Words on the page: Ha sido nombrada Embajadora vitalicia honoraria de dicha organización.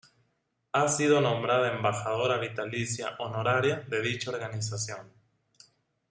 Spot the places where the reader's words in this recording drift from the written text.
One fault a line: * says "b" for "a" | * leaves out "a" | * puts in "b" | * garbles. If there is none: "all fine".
all fine